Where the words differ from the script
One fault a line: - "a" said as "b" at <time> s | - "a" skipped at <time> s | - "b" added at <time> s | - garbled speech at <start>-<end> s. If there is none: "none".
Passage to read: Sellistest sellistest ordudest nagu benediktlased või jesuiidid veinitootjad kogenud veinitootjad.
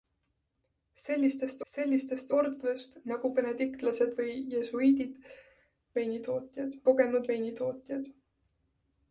none